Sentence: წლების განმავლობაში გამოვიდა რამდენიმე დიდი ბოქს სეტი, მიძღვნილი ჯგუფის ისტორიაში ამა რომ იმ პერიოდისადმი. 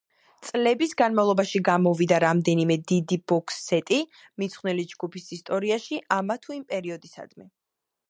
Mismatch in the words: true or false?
true